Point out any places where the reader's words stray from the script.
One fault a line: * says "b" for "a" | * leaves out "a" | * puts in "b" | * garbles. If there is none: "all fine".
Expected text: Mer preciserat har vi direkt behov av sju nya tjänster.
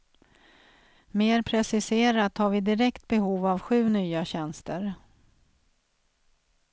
all fine